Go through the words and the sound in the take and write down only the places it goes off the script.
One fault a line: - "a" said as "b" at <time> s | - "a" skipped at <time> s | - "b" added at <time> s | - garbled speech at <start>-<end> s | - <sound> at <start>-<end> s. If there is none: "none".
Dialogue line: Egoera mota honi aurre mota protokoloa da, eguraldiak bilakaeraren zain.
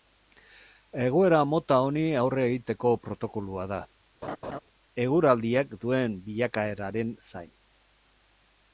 - "mota" said as "egiteko" at 2.5 s
- laugh at 4.2-4.6 s
- "duen" added at 5.9 s